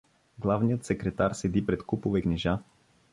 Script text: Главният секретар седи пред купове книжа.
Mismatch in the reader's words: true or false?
false